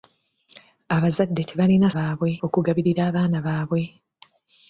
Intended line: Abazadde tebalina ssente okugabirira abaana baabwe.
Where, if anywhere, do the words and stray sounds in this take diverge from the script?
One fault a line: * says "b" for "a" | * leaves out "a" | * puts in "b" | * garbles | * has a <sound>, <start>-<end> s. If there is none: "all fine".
* says "baabwe" for "ssente"